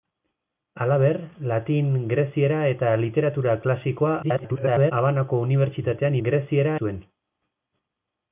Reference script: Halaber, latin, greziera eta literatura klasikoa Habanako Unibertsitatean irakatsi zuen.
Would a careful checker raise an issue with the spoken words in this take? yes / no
yes